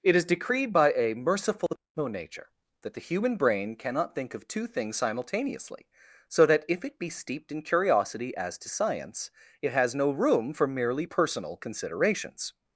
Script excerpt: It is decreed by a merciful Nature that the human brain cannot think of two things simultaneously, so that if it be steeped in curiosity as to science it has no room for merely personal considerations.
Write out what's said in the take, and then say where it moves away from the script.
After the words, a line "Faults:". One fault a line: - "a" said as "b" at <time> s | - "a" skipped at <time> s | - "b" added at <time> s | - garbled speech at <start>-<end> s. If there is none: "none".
It is decreed by a merciful Nature that the human brain cannot think of two things simultaneously, so that if it be steeped in curiosity as to science it has no room for merely personal considerations.
Faults:
none